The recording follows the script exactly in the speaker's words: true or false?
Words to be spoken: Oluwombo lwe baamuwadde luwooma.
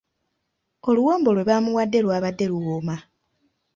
false